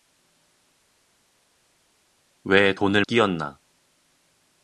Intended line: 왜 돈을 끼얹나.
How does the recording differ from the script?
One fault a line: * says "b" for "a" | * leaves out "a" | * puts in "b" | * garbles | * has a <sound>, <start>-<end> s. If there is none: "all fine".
all fine